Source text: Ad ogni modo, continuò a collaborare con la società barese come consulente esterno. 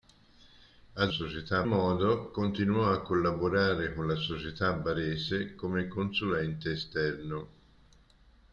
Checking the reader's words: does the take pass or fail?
fail